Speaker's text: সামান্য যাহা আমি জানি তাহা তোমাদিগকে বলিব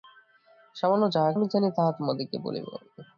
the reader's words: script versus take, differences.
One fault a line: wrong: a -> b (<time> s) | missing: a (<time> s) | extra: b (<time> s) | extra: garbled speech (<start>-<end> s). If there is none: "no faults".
no faults